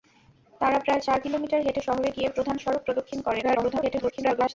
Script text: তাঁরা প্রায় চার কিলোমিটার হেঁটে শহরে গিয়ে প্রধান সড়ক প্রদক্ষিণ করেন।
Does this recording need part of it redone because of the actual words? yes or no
yes